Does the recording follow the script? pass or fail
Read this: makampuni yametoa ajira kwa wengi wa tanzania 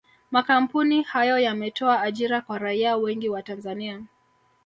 fail